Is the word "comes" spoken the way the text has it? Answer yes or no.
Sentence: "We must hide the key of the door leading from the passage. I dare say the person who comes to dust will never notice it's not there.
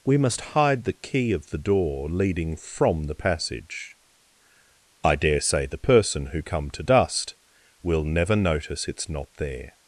no